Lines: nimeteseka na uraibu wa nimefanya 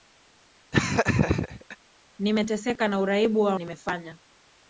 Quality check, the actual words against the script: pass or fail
pass